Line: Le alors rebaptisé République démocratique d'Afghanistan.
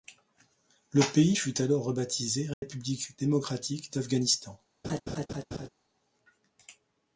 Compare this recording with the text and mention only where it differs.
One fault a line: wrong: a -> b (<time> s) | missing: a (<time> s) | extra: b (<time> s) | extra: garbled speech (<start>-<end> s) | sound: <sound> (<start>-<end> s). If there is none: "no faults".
extra: pays fut (1.1 s)
sound: dropout (2.5-2.6 s)
sound: laugh (4.8-5.7 s)